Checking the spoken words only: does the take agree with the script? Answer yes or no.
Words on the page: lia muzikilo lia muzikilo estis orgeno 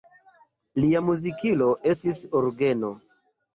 no